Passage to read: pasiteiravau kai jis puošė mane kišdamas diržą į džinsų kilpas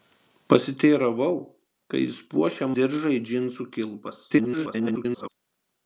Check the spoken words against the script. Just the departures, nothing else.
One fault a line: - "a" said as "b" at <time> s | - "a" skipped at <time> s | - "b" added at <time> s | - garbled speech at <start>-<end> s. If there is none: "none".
- "mane kišdamas" skipped at 2.7 s
- garbled speech at 4.3-5.3 s